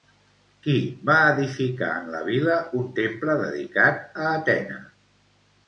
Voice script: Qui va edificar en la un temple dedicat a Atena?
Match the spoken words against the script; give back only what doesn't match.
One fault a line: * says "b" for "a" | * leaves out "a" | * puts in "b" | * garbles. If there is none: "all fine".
* puts in "vila"